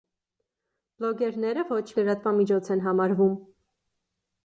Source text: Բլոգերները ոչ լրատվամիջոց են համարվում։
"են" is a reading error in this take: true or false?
false